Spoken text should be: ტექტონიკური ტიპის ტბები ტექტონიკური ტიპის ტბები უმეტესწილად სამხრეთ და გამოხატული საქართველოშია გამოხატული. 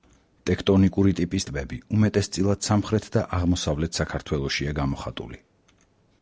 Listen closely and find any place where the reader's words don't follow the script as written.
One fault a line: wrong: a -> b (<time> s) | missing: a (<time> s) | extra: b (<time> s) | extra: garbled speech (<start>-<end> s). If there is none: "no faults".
missing: ტექტონიკური ტიპის ტბები (1.8 s)
wrong: გამოხატული -> აღმოსავლეთ (3.4 s)